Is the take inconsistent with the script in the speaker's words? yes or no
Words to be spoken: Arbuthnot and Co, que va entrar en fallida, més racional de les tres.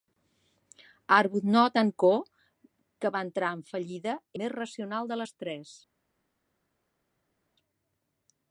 no